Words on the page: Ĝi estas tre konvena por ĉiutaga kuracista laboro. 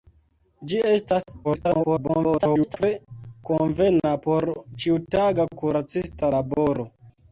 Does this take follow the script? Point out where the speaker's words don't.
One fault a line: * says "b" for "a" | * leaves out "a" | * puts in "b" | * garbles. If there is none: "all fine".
* garbles